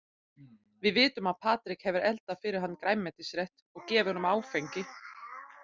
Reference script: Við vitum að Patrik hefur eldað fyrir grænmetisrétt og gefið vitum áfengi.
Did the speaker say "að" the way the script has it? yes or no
yes